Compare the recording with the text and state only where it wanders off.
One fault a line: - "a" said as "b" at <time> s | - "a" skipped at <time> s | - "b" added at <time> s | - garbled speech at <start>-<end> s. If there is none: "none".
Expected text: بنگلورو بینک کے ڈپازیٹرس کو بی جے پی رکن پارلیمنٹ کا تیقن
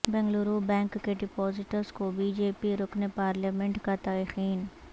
none